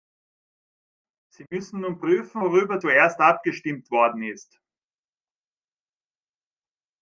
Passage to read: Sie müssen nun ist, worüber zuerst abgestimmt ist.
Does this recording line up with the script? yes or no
no